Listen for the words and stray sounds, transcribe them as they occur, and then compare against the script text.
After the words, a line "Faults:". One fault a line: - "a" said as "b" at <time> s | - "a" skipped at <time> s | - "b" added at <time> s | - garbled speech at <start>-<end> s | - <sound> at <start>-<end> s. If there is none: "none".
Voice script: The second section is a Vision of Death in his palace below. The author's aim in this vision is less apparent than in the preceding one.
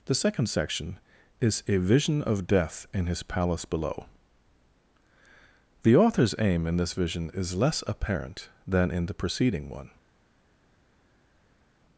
The second section is a Vision of Death in his palace below. The author's aim in this vision is less apparent than in the preceding one.
Faults:
none